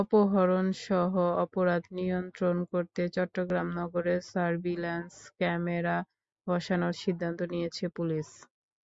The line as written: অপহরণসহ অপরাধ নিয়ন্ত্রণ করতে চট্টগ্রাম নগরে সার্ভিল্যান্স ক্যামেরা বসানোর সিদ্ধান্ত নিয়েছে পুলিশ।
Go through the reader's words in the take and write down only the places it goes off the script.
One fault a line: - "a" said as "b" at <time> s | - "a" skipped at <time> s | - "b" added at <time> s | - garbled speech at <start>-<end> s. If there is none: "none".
none